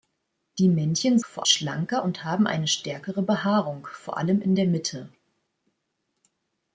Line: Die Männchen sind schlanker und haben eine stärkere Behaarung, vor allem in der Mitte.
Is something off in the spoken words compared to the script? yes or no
yes